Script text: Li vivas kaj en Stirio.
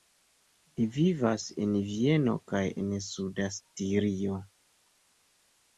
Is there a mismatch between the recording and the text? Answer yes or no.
yes